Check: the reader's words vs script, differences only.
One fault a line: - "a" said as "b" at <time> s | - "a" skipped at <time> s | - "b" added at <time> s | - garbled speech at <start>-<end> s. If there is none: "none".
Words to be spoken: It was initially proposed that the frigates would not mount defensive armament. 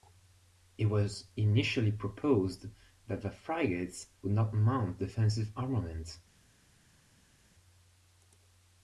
none